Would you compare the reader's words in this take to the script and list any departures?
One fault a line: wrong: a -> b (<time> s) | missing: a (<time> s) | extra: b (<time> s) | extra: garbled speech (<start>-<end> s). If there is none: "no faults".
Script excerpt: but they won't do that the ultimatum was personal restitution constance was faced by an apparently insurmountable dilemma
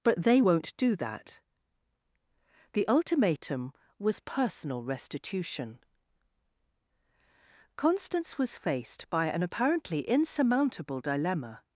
no faults